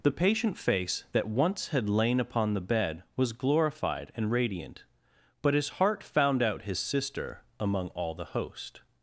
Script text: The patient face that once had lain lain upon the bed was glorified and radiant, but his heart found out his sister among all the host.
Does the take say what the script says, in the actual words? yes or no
no